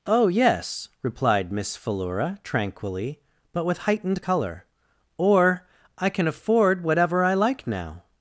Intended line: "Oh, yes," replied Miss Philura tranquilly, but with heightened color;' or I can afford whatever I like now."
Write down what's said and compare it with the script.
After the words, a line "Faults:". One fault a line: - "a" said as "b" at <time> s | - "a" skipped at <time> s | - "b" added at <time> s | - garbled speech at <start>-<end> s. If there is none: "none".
"Oh, yes," replied Miss Philura tranquilly, but with heightened color;' or I can afford whatever I like now."
Faults:
none